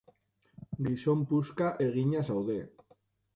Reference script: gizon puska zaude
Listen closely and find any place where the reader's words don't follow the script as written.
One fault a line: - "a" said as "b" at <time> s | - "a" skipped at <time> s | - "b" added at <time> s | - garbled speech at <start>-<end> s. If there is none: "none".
- "egina" added at 1.9 s